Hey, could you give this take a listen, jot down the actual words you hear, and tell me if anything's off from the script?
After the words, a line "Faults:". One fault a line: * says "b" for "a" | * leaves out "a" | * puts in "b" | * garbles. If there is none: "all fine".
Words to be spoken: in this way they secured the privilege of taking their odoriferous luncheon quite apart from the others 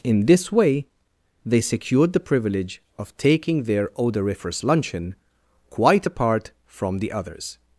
in this way they secured the privilege of taking their odoriferous luncheon quite apart from the others
Faults:
all fine